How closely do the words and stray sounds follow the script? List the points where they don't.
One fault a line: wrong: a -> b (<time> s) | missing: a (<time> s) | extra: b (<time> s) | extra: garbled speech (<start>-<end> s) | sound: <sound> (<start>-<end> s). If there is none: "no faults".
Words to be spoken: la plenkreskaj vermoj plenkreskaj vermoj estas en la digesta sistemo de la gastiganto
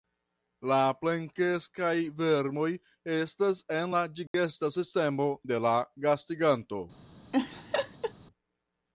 missing: plenkreskaj vermoj (2.7 s)
sound: dropout (4.3-4.3 s)
sound: laugh (7.3-8.1 s)